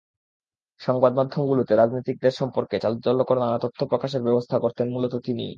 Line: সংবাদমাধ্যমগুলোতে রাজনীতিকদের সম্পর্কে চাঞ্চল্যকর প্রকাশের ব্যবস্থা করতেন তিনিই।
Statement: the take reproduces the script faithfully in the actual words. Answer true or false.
false